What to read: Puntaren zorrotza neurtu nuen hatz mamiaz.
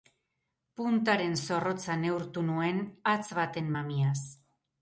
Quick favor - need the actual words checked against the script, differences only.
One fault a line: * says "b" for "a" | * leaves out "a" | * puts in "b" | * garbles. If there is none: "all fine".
* puts in "baten"